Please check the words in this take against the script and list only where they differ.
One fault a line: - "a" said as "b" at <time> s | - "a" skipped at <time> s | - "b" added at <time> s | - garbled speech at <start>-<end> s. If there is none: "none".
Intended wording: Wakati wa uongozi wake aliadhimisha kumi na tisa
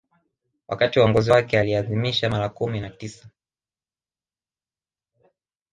- "mara" added at 2.3 s